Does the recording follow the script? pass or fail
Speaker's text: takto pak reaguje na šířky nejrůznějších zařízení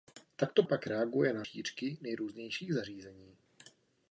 pass